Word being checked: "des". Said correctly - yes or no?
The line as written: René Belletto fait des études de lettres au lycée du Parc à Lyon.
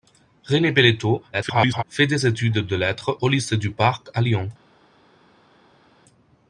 yes